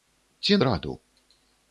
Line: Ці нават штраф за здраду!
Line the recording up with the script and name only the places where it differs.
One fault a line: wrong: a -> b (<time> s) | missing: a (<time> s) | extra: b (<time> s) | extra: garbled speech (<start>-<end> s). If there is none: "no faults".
missing: нават штраф за (0.6 s)